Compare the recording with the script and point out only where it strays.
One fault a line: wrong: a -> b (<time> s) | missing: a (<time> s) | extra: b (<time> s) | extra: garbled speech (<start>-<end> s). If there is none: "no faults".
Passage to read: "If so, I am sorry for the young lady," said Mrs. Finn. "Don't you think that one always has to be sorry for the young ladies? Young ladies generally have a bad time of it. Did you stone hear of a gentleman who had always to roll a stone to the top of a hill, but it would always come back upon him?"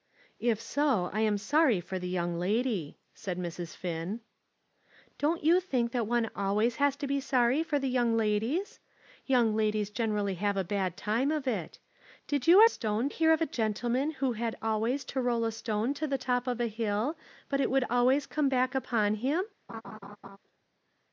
no faults